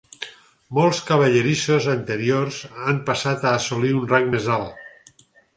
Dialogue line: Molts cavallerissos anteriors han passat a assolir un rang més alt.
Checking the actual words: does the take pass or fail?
pass